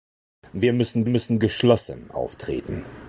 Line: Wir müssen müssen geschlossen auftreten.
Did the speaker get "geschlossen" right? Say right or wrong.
right